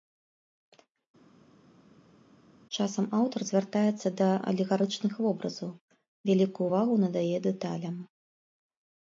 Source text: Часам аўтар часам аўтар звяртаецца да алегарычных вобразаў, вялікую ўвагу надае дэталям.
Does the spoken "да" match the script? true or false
true